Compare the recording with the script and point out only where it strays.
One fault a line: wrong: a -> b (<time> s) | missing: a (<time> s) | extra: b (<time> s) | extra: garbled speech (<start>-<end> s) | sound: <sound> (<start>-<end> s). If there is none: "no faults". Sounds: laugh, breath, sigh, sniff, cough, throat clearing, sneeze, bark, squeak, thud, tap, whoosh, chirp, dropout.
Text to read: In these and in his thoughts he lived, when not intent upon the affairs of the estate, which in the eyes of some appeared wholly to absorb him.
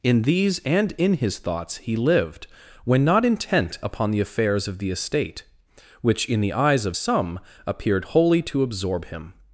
no faults